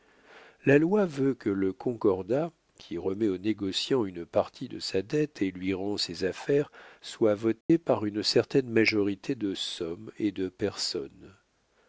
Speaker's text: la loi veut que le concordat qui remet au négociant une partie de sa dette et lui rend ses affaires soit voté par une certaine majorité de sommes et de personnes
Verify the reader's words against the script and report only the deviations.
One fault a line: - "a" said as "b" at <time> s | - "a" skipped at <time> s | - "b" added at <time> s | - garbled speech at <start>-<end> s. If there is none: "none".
none